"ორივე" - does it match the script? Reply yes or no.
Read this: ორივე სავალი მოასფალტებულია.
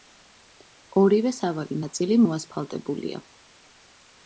yes